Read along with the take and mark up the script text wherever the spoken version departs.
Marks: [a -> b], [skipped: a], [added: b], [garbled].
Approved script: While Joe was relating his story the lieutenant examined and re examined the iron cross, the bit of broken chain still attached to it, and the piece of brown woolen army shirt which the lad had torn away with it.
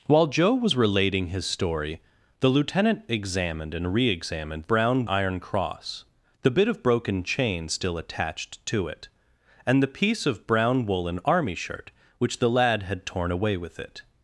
While Joe was relating his story the lieutenant examined and re examined [the -> brown] iron cross, the bit of broken chain still attached to it, and the piece of brown woolen army shirt which the lad had torn away with it.